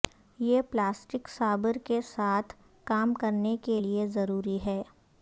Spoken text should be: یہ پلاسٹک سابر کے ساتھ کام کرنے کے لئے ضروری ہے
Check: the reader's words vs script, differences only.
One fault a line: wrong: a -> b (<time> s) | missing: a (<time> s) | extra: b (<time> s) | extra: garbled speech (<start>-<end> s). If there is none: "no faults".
no faults